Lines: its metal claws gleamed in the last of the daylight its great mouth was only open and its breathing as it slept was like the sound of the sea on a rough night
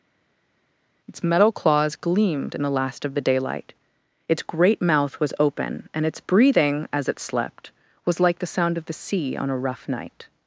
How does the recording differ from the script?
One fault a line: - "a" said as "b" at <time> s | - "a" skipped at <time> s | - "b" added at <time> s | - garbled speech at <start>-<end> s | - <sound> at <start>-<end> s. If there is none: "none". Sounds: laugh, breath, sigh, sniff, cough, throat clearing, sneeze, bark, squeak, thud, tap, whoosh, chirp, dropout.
- "only" skipped at 5.3 s